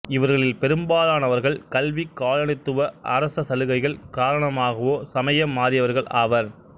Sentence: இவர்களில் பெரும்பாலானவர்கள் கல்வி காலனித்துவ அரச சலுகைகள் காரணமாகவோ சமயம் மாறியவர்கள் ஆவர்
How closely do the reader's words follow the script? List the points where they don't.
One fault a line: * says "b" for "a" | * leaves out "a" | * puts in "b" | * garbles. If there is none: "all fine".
all fine